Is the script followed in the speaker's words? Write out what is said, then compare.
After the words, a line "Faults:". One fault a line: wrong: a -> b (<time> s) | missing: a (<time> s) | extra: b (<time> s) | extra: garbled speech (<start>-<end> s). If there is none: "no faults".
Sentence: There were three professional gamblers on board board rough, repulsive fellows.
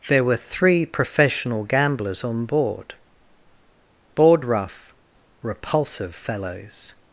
There were three professional gamblers on board board rough, repulsive fellows.
Faults:
no faults